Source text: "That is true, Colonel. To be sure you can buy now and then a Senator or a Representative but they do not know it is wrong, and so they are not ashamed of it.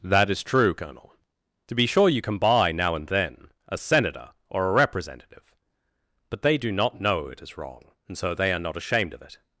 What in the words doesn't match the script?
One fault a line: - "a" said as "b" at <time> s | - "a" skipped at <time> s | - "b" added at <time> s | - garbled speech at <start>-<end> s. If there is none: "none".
none